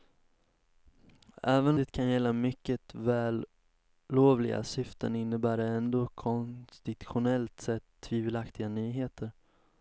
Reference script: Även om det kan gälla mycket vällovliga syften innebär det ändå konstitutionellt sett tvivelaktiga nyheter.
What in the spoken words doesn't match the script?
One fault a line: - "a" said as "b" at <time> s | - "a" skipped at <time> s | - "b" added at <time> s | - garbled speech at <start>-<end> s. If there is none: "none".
- "om" skipped at 1.8 s